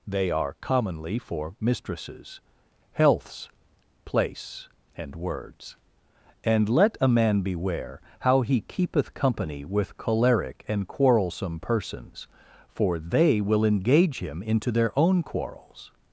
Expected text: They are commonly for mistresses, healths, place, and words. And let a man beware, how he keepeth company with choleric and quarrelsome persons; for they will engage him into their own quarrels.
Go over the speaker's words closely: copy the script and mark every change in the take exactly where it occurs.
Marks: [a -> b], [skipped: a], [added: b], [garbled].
They are commonly for mistresses, healths, place, and words. And let a man beware, how he keepeth company with choleric and quarrelsome persons; for they will engage him into their own quarrels.